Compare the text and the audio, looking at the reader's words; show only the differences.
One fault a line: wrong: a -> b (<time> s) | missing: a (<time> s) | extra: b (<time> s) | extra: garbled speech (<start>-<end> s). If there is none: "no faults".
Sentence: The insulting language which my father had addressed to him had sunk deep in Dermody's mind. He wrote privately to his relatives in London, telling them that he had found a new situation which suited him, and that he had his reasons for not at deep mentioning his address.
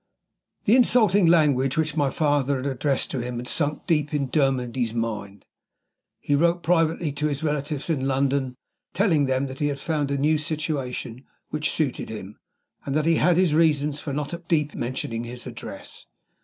no faults